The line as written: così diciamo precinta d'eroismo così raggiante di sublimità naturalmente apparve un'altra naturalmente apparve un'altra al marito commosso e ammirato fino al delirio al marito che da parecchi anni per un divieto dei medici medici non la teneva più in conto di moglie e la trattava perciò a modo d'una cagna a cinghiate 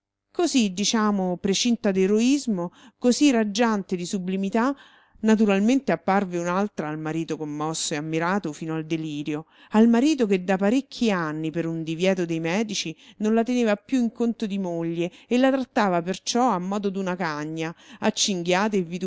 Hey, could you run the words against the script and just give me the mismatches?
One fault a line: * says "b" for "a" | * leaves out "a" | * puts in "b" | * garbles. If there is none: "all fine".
* leaves out "naturalmente apparve un'altra"
* leaves out "medici"